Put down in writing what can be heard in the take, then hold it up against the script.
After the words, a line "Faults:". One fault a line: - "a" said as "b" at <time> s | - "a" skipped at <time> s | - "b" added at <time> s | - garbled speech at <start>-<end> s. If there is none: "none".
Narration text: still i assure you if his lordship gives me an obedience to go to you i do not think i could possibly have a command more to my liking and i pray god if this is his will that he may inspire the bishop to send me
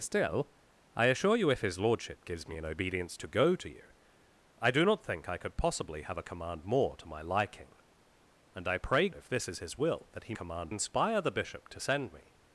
still i assure you if his lordship gives me an obedience to go to you i do not think i could possibly have a command more to my liking and i pray if this is his will that he command inspire the bishop to send me
Faults:
- "god" skipped at 9.1 s
- "may" said as "command" at 10.3 s